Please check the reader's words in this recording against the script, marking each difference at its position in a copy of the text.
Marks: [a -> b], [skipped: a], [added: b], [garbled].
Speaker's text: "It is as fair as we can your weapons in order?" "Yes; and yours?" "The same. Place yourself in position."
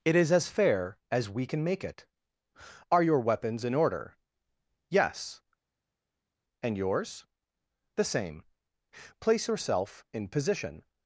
"It is as fair as we can [added: make it Are] your weapons in order?" "Yes; and yours?" "The same. Place yourself in position."